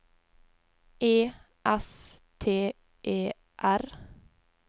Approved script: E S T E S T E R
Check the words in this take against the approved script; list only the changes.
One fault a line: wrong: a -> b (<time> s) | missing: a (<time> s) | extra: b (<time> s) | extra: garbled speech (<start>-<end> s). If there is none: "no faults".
missing: S T E (3.3 s)